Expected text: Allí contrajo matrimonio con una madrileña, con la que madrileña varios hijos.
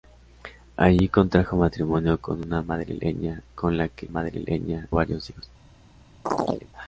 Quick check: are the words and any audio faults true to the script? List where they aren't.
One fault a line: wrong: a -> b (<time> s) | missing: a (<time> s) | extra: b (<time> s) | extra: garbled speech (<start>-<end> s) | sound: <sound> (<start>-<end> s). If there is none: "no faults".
sound: chirp (6.3-6.7 s)